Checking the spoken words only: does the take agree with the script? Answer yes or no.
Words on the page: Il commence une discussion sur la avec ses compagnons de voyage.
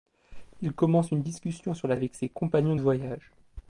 yes